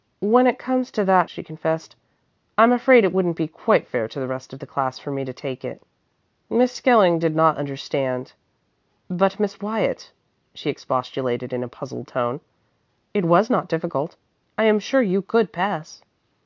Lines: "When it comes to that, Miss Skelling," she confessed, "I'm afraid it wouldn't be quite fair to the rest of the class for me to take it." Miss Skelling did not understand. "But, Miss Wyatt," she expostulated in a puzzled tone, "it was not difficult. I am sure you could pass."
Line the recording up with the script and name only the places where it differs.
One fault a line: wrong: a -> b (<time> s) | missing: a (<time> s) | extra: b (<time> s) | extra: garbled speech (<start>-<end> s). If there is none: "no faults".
missing: Miss Skelling (1.3 s)